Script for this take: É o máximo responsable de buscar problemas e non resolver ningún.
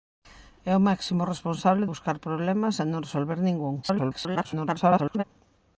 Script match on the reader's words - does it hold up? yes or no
no